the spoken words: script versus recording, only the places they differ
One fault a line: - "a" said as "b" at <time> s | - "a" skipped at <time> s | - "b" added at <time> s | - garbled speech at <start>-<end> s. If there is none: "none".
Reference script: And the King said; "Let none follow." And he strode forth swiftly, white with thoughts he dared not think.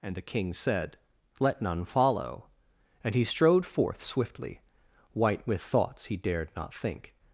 none